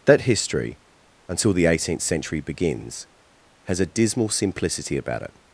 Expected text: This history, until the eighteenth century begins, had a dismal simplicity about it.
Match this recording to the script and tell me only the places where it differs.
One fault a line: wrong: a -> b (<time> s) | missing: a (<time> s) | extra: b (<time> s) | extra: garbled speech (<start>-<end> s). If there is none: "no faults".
wrong: This -> That (0.1 s)
wrong: had -> has (3.6 s)